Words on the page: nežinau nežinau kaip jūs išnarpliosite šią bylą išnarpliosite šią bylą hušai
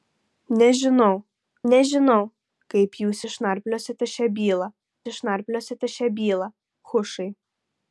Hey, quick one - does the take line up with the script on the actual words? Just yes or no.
yes